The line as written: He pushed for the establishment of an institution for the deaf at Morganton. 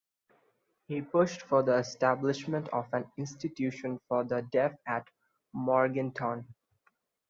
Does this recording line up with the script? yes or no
yes